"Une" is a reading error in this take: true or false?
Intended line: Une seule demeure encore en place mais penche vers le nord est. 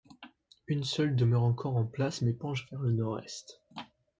false